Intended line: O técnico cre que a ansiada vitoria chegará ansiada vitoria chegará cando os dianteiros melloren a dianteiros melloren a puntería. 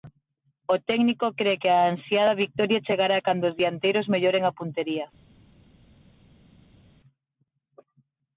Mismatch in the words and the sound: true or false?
true